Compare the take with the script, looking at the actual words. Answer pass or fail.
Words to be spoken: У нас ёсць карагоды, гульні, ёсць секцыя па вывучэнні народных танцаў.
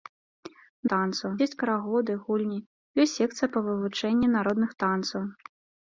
fail